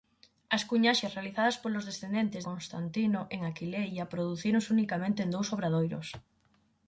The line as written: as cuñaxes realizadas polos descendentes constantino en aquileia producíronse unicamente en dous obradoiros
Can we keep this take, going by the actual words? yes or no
yes